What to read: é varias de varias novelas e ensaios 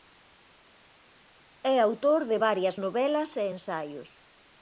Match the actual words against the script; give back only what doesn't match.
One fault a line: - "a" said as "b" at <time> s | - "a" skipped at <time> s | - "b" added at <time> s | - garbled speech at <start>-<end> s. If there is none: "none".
- "varias" said as "autor" at 1.8 s